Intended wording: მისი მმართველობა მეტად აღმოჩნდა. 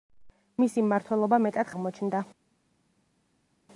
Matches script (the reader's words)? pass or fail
pass